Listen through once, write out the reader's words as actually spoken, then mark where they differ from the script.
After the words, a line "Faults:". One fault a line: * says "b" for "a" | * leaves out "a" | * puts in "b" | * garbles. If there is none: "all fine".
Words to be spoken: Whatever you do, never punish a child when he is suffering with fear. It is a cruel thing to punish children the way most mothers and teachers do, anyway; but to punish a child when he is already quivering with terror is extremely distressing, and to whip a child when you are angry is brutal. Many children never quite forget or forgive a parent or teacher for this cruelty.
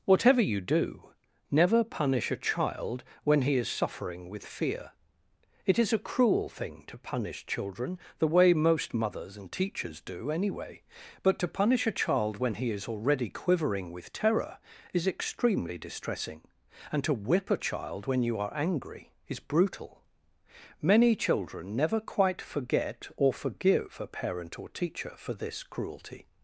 Whatever you do, never punish a child when he is suffering with fear. It is a cruel thing to punish children the way most mothers and teachers do, anyway; but to punish a child when he is already quivering with terror is extremely distressing, and to whip a child when you are angry is brutal. Many children never quite forget or forgive a parent or teacher for this cruelty.
Faults:
all fine